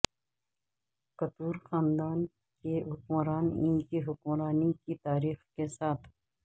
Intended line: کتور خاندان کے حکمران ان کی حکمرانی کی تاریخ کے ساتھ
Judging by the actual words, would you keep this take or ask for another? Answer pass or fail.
pass